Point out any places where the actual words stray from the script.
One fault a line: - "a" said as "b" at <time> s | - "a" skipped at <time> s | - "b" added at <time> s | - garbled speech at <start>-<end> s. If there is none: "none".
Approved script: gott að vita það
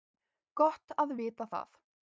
none